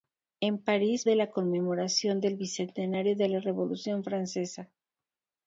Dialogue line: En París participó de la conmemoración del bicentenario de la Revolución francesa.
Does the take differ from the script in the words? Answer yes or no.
yes